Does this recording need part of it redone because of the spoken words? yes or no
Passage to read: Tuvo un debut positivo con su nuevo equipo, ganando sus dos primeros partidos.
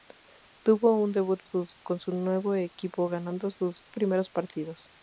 yes